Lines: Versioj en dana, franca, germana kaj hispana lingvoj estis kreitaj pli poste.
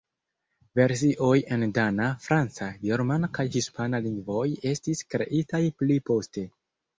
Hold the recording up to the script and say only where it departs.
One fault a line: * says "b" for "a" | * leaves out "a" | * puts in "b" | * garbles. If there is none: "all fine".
all fine